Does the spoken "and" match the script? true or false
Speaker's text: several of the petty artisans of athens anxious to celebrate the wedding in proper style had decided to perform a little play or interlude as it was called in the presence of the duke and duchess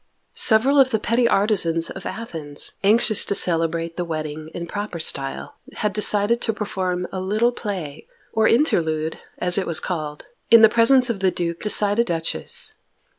false